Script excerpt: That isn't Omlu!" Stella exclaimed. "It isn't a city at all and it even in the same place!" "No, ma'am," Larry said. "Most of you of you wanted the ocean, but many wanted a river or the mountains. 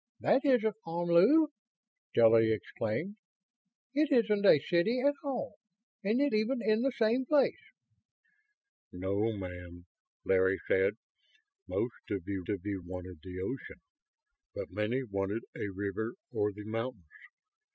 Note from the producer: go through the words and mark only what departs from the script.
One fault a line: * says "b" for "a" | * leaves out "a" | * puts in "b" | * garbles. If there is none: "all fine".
all fine